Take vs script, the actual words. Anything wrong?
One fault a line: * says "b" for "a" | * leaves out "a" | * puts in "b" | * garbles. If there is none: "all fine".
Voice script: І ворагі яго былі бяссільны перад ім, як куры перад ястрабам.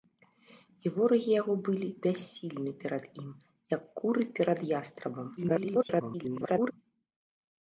* garbles